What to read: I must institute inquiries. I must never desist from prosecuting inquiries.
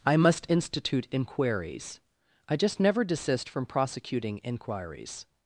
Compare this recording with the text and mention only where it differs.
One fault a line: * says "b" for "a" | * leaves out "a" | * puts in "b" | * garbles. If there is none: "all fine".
* says "just" for "must"